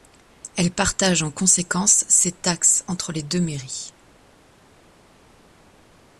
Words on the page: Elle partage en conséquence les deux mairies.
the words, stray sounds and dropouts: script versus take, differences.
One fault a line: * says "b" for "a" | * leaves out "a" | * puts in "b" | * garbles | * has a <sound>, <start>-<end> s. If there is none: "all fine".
* puts in "ses taxes entre"